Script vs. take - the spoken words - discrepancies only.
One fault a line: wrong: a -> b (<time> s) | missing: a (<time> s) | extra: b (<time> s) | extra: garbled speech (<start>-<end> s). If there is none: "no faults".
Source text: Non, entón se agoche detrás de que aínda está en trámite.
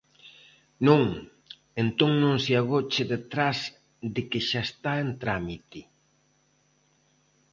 extra: non (2.2 s)
wrong: aínda -> xa (4.5 s)